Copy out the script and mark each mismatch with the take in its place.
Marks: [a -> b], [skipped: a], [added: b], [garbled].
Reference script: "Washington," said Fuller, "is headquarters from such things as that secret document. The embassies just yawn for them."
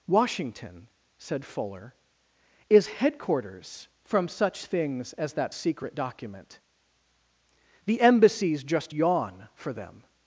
"Washington," said Fuller, "is headquarters from such things as that secret document. The embassies just yawn for them."